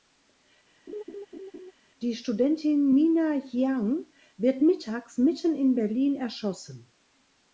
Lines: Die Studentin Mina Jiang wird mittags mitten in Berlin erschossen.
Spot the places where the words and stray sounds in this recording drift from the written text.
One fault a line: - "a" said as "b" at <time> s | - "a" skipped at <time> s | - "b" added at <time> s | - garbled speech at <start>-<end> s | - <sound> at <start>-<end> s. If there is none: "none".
- laugh at 0.9-1.7 s